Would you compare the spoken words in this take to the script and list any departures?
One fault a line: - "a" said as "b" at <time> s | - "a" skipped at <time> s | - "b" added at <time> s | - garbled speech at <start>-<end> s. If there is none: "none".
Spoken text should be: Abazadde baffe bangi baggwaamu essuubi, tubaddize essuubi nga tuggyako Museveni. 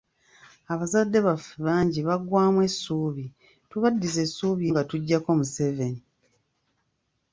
none